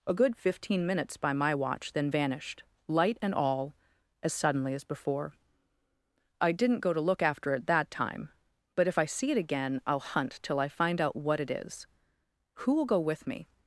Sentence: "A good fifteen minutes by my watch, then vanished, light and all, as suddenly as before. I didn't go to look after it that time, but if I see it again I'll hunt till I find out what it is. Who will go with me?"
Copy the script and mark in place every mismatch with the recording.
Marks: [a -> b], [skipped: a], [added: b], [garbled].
"A good fifteen minutes by my watch, then vanished, light and all, as suddenly as before. I didn't go to look after it that time, but if I see it again I'll hunt till I find out what it is. Who will go with me?"